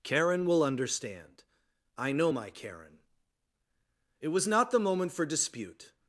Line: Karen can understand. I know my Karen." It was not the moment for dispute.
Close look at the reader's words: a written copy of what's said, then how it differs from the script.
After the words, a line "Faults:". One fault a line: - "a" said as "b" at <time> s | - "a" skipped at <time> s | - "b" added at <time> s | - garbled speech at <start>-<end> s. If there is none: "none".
Karen will understand. I know my Karen." It was not the moment for dispute.
Faults:
- "can" said as "will" at 0.5 s